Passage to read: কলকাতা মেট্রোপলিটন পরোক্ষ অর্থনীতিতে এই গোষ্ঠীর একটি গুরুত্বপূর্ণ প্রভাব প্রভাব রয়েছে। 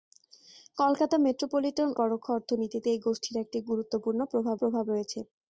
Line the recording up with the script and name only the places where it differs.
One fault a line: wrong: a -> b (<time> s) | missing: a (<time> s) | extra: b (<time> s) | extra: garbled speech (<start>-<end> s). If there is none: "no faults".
no faults